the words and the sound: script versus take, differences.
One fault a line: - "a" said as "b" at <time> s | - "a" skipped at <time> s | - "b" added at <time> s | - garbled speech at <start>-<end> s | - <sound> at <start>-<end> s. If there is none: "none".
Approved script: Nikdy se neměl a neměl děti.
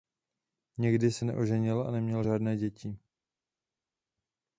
- "neměl" said as "neoženil" at 1.2 s
- "žádné" added at 2.2 s